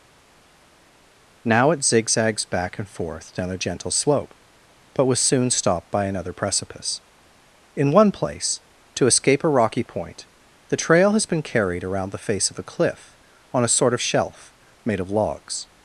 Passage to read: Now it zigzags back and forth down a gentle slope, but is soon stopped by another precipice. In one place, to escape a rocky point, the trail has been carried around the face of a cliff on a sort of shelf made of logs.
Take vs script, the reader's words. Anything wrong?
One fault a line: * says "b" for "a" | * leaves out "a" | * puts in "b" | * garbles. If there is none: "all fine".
* says "was" for "is"